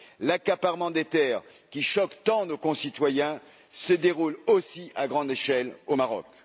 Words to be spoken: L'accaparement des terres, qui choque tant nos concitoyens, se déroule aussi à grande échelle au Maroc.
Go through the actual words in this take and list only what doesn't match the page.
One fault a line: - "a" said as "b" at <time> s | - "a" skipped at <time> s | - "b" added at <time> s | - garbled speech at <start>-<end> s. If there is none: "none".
none